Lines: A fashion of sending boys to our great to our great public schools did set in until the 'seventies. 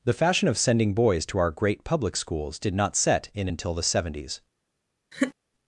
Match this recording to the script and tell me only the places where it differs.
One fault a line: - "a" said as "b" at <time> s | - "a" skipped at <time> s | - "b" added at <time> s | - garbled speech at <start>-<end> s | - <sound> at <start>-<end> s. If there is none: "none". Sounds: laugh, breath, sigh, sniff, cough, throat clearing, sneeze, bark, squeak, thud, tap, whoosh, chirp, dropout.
- "A" said as "The" at 0.0 s
- "to our great" skipped at 1.8 s
- "not" added at 2.7 s
- laugh at 5.1-5.3 s